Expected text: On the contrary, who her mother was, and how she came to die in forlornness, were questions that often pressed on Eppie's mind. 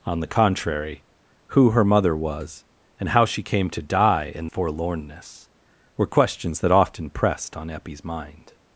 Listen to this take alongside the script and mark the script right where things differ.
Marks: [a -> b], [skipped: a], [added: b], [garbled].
On the contrary, who her mother was, and how she came to die in forlornness, were questions that often pressed on Eppie's mind.